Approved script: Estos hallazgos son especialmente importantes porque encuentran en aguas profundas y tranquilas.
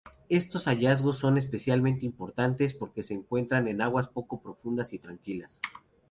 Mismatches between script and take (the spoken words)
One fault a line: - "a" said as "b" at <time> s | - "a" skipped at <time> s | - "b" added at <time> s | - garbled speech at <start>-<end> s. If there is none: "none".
- "se" added at 3.0 s
- "poco" added at 4.1 s